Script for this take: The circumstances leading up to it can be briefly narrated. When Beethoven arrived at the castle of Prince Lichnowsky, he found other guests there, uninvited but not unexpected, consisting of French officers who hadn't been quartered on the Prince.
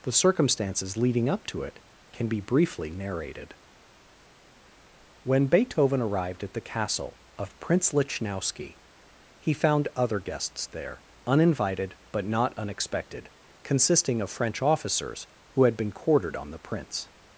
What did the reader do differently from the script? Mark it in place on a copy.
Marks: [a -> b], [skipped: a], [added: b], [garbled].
The circumstances leading up to it can be briefly narrated. When Beethoven arrived at the castle of Prince Lichnowsky, he found other guests there, uninvited but not unexpected, consisting of French officers who [hadn't -> had] been quartered on the Prince.